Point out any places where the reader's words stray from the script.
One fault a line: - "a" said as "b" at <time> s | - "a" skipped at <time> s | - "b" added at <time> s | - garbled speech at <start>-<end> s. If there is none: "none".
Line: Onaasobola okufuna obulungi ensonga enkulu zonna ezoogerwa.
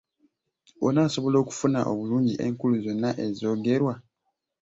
- "ensonga" skipped at 2.3 s